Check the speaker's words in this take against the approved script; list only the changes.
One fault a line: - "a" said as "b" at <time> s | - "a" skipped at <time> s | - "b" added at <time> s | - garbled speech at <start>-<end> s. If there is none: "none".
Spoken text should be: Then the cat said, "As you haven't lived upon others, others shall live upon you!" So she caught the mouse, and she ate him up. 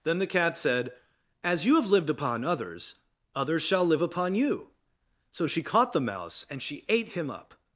- "haven't" said as "have" at 1.8 s